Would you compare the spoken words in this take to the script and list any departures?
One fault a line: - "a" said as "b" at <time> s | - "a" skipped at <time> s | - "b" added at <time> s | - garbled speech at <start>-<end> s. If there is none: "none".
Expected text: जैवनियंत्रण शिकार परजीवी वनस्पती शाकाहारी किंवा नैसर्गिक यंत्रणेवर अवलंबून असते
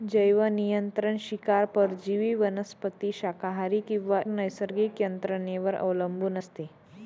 none